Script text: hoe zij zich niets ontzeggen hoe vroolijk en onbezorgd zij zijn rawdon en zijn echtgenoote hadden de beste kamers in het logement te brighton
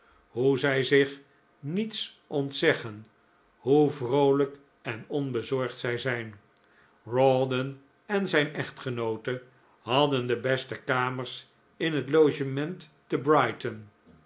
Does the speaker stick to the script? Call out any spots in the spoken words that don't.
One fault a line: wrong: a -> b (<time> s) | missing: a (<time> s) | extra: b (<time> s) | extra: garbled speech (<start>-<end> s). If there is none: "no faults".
no faults